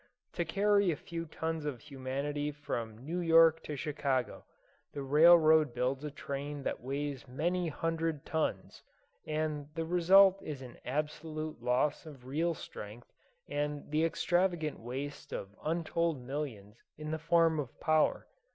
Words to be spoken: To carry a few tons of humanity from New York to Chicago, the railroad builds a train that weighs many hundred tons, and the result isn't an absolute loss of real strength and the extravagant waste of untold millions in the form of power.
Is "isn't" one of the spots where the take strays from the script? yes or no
yes